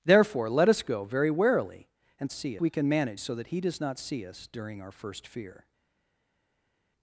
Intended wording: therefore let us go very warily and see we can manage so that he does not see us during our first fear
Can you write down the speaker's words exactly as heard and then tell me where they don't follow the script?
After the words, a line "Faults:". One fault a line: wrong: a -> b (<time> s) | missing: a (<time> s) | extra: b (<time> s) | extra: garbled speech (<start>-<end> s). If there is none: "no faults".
therefore let us go very warily and see we can manage so that he does not see us during our first fear
Faults:
no faults